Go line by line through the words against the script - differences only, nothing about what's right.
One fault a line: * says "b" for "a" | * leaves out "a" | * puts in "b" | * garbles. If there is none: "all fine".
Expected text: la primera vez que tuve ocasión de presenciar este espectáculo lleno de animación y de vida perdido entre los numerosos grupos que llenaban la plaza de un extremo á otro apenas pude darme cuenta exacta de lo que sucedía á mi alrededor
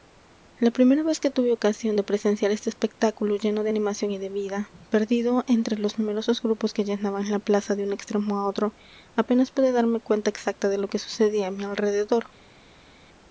all fine